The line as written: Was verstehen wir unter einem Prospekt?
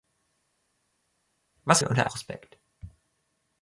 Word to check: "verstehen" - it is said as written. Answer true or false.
false